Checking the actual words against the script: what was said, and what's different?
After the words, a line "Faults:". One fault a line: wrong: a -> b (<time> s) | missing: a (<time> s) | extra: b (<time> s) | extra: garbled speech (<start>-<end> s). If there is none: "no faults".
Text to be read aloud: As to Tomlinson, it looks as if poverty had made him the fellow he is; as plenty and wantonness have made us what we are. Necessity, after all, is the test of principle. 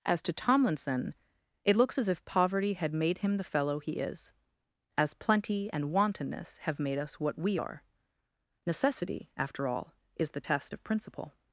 As to Tomlinson, it looks as if poverty had made him the fellow he is; as plenty and wantonness have made us what we are. Necessity, after all, is the test of principle.
Faults:
no faults